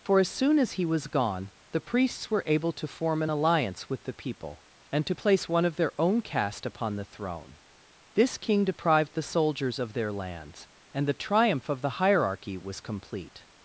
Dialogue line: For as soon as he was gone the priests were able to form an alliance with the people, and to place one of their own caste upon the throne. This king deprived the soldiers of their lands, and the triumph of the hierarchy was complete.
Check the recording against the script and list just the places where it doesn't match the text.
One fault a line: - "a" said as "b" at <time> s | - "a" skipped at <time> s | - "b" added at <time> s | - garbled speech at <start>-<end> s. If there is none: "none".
none